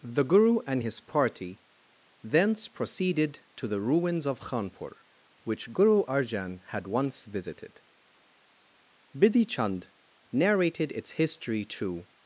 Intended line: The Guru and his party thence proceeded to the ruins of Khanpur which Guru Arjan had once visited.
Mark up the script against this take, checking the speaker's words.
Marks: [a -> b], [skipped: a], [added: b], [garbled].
The Guru and his party thence proceeded to the ruins of Khanpur which Guru Arjan had once visited. [added: Bidhi Chand narrated its history to]